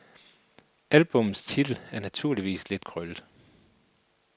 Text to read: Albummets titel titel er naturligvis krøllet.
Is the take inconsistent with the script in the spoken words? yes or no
yes